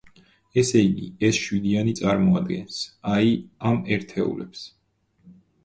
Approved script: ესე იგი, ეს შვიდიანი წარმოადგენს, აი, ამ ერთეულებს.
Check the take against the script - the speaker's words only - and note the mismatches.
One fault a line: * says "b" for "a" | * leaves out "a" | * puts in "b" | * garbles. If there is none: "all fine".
all fine